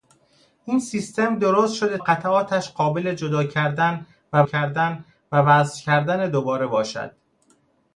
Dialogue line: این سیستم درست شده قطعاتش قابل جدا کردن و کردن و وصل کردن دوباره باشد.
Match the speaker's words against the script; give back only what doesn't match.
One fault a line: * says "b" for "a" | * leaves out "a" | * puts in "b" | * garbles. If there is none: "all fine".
all fine